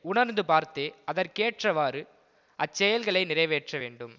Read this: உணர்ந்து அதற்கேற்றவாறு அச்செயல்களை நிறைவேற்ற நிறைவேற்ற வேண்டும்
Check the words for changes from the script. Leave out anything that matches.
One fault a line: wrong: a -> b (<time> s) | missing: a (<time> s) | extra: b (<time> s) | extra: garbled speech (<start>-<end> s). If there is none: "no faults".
extra: பார்த்தே (0.4 s)
missing: நிறைவேற்ற (3.8 s)